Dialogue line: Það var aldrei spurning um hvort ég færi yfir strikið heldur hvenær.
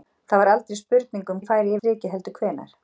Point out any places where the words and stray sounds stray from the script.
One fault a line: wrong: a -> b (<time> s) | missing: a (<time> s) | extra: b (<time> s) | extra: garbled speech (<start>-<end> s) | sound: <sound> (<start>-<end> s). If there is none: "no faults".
missing: hvort (1.4 s)
missing: yfir (1.8 s)